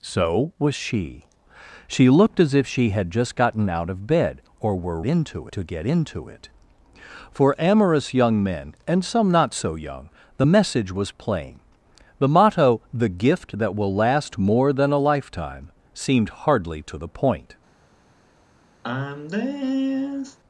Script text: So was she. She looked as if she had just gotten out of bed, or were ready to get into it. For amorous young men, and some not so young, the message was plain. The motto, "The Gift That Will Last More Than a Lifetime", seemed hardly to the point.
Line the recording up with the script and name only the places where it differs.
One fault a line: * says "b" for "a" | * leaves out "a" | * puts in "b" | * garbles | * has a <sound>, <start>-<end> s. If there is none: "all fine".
* says "into" for "ready"
* has a sigh, 18.8-20.4 s